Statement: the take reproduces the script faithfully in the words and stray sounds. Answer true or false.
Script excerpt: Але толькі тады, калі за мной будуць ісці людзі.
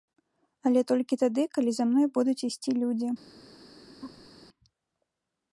false